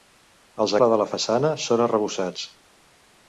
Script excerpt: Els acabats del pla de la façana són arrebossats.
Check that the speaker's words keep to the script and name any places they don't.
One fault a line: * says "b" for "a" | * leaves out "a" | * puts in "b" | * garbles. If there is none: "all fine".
* leaves out "acabats del"